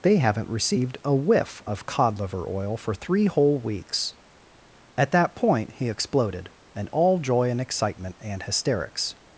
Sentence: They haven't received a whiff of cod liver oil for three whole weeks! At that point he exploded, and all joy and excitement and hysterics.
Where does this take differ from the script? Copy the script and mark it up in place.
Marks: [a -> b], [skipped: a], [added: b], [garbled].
They haven't received a whiff of cod liver oil for three whole weeks! At that point he exploded, and all joy and excitement and hysterics.